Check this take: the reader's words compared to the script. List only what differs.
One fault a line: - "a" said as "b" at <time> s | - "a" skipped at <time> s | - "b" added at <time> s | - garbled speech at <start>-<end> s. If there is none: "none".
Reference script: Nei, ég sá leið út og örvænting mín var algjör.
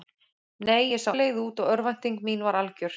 none